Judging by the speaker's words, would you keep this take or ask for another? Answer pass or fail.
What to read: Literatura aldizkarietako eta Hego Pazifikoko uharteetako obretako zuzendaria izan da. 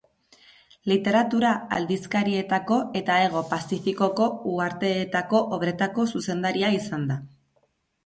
pass